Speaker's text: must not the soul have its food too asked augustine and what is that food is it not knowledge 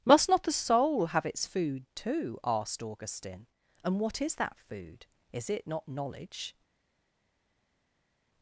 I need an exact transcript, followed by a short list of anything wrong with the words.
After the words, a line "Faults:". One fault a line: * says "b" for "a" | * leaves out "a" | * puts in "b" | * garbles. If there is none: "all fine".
must not the soul have its food too asked augustine and what is that food is it not knowledge
Faults:
all fine